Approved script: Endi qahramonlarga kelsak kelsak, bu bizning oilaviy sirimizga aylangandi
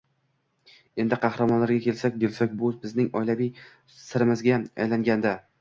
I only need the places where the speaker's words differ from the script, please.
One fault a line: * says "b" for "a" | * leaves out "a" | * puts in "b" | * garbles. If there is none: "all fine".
all fine